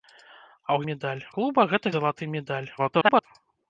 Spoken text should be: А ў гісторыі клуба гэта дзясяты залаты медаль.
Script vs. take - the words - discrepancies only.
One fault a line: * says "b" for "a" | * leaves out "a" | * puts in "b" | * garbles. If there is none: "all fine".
* says "медаль" for "гісторыі"
* leaves out "дзясяты"
* garbles